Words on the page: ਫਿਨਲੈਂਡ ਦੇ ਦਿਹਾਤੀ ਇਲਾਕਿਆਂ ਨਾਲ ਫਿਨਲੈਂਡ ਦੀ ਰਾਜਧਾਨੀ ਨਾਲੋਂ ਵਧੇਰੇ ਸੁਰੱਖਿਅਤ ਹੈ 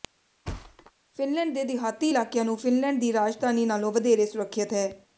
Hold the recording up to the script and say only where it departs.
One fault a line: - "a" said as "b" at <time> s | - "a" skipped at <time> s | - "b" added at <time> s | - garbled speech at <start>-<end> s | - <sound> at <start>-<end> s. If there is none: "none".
- thud at 0.4-0.9 s
- "ਨਾਲ" said as "ਨੂੰ" at 2.5 s